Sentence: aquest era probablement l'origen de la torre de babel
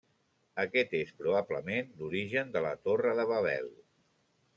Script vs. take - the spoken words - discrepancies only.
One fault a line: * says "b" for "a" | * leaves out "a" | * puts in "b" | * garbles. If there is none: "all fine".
* says "és" for "era"